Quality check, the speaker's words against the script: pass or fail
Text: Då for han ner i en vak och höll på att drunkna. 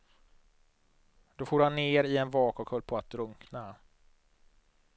pass